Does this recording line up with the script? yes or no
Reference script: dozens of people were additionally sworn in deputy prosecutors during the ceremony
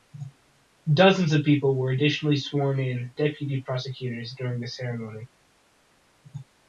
yes